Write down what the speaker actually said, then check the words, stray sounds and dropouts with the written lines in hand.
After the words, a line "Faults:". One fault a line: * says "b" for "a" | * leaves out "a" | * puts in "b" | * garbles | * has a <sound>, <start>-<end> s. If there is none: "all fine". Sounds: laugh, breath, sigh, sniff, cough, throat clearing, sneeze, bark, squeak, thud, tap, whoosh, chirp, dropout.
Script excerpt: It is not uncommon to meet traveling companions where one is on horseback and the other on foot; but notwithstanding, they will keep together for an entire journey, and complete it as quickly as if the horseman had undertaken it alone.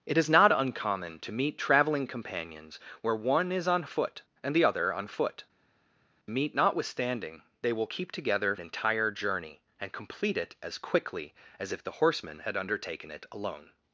It is not uncommon to meet traveling companions where one is on foot and the other on foot; meet notwithstanding, they will keep together an entire journey, and complete it as quickly as if the horseman had undertaken it alone.
Faults:
* says "foot" for "horseback"
* says "meet" for "but"
* leaves out "for"